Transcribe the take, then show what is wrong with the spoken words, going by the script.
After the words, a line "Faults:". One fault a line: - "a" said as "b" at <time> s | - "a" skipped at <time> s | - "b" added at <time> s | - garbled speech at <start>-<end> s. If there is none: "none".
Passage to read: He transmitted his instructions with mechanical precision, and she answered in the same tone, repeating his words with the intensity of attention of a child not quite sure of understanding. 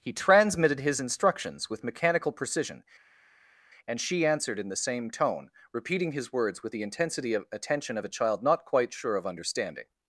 He transmitted his instructions with mechanical precision, and she answered in the same tone, repeating his words with the intensity of attention of a child not quite sure of understanding.
Faults:
none